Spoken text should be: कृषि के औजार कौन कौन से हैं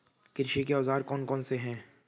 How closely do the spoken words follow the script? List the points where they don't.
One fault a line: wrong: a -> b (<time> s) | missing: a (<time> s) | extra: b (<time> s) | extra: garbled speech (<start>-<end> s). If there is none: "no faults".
no faults